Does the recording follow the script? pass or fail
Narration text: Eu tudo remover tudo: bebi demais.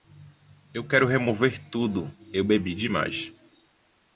fail